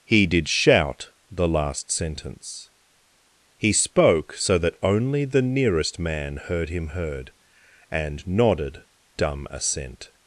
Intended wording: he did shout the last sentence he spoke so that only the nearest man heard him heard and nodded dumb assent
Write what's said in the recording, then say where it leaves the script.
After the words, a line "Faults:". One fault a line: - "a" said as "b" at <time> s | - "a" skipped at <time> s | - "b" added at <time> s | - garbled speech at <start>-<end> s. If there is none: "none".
he did shout the last sentence he spoke so that only the nearest man heard him heard and nodded dumb assent
Faults:
none